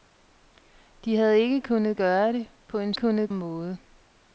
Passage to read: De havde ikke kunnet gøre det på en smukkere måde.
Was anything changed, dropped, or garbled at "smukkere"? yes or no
yes